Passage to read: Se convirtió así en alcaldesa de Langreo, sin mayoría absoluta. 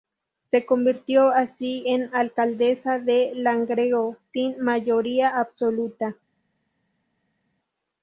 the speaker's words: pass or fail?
pass